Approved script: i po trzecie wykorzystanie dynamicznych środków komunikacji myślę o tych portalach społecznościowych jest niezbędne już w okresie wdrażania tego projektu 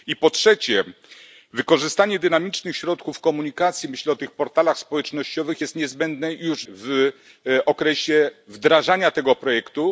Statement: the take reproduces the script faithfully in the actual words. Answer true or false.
true